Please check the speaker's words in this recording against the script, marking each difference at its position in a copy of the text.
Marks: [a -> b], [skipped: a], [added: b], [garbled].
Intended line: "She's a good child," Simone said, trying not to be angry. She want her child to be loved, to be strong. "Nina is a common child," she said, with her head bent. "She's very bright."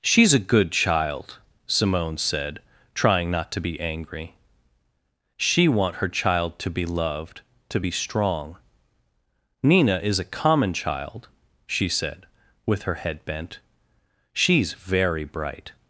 "She's a good child," Simone said, trying not to be angry. She want her child to be loved, to be strong. "Nina is a common child," she said, with her head bent. "She's very bright."